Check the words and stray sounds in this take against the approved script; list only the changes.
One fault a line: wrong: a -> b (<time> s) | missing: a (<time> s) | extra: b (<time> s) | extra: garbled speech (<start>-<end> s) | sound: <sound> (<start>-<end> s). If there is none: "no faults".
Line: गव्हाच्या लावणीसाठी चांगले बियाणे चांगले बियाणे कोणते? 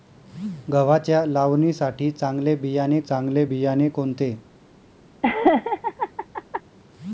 sound: laugh (5.2-6.6 s)